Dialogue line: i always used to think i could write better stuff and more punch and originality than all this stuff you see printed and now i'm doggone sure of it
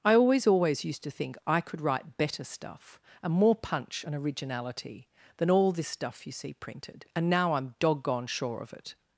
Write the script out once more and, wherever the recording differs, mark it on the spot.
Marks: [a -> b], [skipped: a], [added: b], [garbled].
i always [added: always] used to think i could write better stuff and more punch and originality than all this stuff you see printed and now i'm doggone sure of it